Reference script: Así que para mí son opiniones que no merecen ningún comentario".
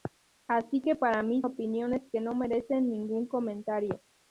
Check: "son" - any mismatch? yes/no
yes